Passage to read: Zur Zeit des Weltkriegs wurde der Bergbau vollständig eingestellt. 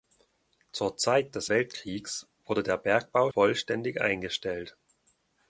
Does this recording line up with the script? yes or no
yes